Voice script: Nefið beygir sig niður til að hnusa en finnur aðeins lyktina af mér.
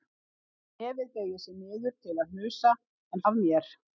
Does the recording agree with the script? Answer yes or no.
no